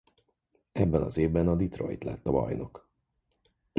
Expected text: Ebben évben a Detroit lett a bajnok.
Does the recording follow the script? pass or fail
fail